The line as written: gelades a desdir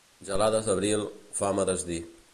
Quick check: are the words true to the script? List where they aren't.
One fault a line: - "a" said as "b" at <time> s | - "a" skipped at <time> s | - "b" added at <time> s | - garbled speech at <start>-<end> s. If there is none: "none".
- "d'abril fam" added at 0.7 s